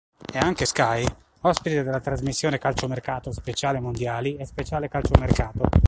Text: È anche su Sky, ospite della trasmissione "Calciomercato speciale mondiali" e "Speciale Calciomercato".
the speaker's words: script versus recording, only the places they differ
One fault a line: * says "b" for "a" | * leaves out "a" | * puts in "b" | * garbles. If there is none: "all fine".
* leaves out "su"